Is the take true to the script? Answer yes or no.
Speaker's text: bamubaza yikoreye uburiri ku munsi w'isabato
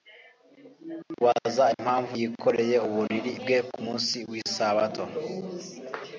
no